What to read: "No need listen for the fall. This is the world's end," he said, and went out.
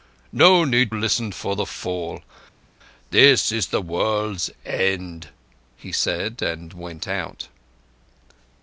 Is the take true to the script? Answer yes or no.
yes